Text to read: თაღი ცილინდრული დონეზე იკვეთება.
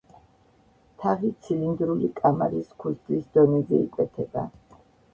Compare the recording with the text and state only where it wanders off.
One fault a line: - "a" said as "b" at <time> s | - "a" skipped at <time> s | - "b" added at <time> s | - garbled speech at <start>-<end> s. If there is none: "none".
- "კამარის ქუსლის" added at 2.2 s